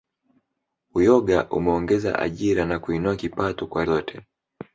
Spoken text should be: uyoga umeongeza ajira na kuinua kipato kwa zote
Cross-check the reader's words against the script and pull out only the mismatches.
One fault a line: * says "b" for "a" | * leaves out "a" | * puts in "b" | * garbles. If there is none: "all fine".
all fine